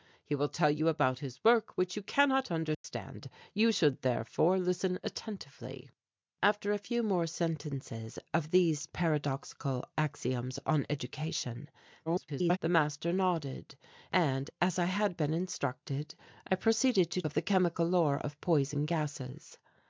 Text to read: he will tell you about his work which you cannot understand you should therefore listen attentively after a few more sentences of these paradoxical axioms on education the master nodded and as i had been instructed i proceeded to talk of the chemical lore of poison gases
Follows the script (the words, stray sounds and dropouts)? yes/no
no